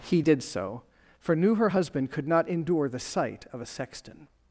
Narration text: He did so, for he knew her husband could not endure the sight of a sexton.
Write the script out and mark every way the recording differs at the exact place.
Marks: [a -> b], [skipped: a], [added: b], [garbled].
He did so, for [skipped: he] knew her husband could not endure the sight of a sexton.